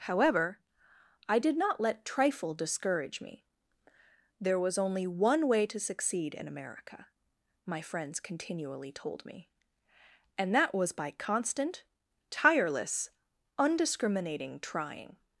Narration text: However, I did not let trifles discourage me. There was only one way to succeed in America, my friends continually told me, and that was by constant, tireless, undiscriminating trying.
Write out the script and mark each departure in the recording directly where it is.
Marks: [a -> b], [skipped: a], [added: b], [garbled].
However, I did not let [trifles -> trifle] discourage me. There was only one way to succeed in America, my friends continually told me, and that was by constant, tireless, undiscriminating trying.